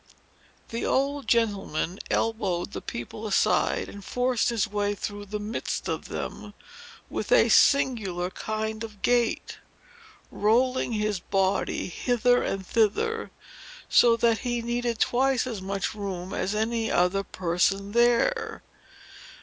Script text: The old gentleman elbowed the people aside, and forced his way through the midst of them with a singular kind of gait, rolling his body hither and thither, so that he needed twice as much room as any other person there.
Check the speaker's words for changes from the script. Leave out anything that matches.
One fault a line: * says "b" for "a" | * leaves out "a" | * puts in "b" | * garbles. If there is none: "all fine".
all fine